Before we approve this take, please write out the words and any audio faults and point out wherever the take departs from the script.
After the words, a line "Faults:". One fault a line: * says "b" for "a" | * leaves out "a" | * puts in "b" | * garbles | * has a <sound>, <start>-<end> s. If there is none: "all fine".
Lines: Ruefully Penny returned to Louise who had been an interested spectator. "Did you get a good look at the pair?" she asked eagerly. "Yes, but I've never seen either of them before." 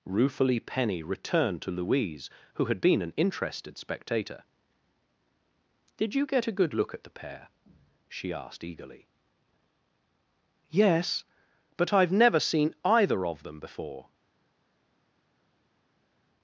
Ruefully Penny returned to Louise who had been an interested spectator. "Did you get a good look at the pair?" she asked eagerly. "Yes, but I've never seen either of them before."
Faults:
all fine